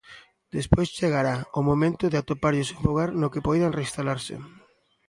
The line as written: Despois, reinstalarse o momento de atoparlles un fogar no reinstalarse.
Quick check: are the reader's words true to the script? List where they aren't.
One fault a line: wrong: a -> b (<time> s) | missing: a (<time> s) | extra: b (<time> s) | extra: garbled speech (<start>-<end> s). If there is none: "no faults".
wrong: reinstalarse -> chegará (1.0 s)
extra: que poidan (3.3 s)